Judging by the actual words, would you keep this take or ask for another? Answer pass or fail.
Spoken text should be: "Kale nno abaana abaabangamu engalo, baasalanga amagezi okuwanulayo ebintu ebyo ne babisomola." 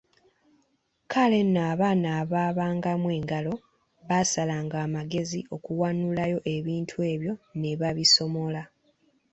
pass